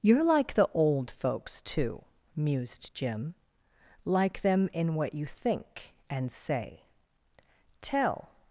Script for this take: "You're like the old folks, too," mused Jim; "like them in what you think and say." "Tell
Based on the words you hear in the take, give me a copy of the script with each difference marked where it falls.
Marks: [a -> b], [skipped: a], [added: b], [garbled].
"You're like the old folks, too," mused Jim; "like them in what you think and say." "Tell